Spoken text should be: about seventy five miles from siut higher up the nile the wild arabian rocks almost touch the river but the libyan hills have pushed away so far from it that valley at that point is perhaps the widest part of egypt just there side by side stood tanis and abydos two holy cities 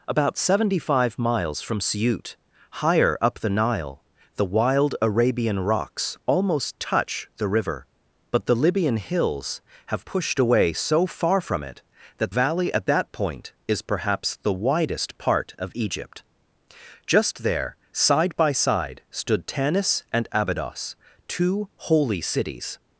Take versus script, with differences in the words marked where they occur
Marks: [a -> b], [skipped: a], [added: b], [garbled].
about seventy five miles from siut higher up the nile the wild arabian rocks almost touch the river but the libyan hills have pushed away so far from it that valley at that point is perhaps the widest part of egypt just there side by side stood tanis and abydos two holy cities